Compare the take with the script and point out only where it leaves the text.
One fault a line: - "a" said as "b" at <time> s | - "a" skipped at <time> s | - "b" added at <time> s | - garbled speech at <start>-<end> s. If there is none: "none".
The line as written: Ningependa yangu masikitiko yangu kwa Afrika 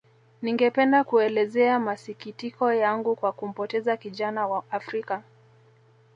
- "yangu" said as "kuelezea" at 1.0 s
- "kumpoteza kijana wa" added at 3.3 s